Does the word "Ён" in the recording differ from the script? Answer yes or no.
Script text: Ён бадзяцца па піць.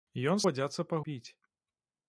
no